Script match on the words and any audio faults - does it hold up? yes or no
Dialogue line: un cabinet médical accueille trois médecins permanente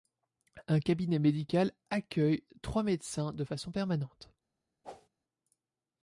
no